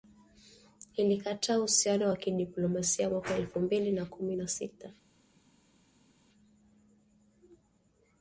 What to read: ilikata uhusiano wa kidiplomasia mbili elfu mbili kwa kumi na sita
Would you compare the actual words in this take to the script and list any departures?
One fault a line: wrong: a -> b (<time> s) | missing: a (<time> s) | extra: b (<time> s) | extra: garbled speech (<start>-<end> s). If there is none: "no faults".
wrong: mbili -> mwaka (3.1 s)
wrong: kwa -> na (3.9 s)